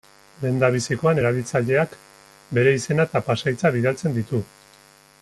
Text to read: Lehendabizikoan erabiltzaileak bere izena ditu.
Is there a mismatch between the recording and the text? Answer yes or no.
yes